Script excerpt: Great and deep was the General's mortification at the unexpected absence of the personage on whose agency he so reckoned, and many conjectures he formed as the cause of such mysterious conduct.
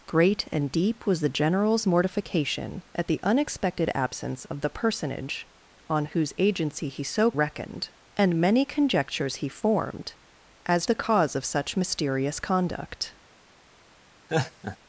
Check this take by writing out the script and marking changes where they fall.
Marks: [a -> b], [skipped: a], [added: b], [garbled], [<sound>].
Great and deep was the General's mortification at the unexpected absence of the personage on whose agency he so reckoned, and many conjectures he formed as the cause of such mysterious conduct. [laugh]